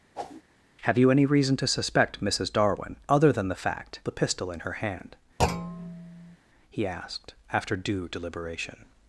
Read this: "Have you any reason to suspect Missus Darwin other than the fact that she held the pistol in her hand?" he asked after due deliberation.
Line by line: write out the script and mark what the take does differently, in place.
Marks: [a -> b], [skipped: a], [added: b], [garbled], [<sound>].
[whoosh] "Have you any reason to suspect Missus Darwin other than the fact [skipped: that she held] the pistol in her hand?" [thud] he asked after due deliberation.